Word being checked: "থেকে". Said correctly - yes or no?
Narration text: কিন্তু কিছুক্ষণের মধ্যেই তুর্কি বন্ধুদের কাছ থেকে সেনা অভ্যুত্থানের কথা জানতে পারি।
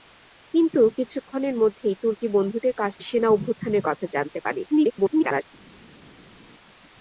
no